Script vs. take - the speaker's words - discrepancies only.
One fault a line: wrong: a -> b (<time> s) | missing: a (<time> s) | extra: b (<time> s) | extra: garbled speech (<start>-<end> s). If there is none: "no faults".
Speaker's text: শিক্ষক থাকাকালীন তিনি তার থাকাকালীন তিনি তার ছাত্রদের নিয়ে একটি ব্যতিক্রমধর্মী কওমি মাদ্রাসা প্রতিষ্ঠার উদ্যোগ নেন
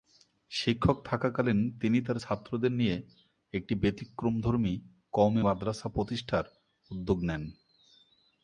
missing: থাকাকালীন তিনি তার (2.2 s)